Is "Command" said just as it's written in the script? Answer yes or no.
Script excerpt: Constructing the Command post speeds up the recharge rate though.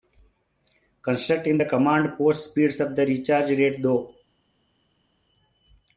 yes